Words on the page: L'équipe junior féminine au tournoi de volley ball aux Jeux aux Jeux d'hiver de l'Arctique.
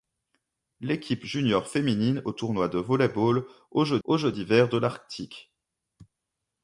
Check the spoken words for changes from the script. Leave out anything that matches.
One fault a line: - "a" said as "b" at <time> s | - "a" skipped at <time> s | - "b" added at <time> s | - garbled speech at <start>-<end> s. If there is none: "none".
none